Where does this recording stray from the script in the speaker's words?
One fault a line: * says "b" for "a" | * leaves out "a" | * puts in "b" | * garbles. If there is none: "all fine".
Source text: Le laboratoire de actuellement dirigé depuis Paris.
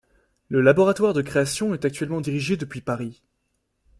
* puts in "création est"